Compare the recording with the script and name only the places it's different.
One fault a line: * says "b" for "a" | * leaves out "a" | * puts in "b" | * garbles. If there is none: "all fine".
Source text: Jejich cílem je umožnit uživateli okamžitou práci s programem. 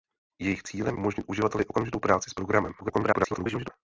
* leaves out "je"
* garbles